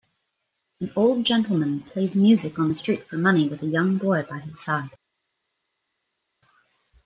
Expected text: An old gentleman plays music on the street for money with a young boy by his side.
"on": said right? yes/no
yes